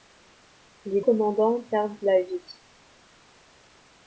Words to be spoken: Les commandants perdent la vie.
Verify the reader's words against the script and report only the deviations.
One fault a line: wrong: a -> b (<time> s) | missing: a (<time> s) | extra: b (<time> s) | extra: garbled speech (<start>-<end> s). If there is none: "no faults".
no faults